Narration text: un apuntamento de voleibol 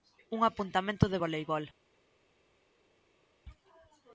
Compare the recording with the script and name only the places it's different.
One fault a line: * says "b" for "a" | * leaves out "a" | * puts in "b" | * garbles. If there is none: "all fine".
all fine